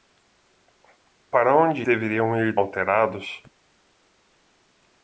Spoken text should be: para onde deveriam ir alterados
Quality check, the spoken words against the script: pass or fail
pass